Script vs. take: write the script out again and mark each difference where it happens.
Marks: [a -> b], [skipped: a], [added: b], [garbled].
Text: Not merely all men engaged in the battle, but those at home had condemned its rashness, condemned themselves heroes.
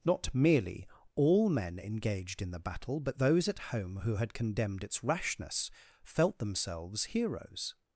Not merely all men engaged in the battle, but those at home [added: who] had condemned its rashness, [condemned -> felt] themselves heroes.